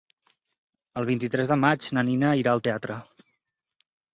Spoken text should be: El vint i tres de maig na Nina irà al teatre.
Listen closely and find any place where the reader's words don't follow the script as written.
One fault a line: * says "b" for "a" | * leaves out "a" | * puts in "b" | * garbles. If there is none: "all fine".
all fine